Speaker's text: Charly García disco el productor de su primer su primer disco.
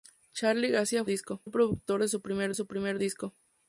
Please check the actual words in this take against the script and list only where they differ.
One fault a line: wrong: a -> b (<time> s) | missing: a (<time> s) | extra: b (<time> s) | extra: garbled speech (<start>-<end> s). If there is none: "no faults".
no faults